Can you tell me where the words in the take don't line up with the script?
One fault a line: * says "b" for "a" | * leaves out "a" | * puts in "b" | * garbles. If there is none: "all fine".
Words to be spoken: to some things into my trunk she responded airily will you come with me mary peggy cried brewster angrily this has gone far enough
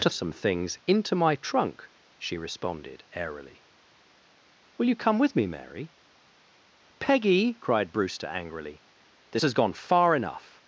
all fine